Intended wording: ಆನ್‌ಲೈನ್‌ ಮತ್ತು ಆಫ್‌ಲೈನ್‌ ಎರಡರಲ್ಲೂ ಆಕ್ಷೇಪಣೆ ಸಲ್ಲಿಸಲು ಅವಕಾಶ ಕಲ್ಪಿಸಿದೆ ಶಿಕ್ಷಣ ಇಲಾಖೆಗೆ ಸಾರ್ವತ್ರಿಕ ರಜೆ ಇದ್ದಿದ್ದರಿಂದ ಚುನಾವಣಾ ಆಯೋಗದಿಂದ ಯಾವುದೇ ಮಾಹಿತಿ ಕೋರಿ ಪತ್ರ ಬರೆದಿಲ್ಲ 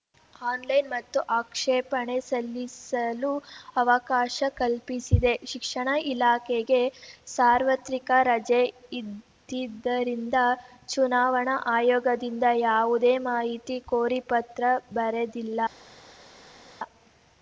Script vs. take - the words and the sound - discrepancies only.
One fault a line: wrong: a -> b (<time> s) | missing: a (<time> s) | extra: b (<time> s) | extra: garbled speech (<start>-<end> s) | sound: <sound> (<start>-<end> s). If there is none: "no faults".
missing: ಆಫ್‌ಲೈನ್ ಎರಡರಲ್ಲೂ (1.2 s)